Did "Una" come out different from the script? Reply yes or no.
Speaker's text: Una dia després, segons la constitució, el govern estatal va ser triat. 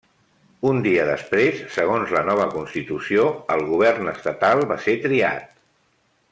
yes